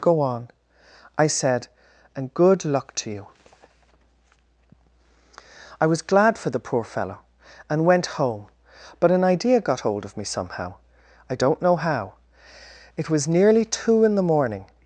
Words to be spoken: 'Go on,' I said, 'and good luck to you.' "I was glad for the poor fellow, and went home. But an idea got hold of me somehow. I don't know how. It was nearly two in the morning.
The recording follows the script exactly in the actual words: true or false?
true